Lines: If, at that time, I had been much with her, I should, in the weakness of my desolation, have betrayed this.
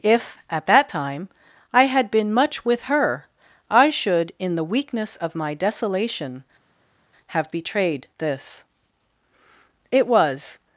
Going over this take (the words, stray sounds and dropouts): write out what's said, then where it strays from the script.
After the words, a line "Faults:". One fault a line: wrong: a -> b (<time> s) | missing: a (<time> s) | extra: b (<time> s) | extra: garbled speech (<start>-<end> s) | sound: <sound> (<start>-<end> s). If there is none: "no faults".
If, at that time, I had been much with her, I should, in the weakness of my desolation, have betrayed this. It was
Faults:
extra: It was (9.9 s)